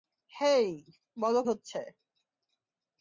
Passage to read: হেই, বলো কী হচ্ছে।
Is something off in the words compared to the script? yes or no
yes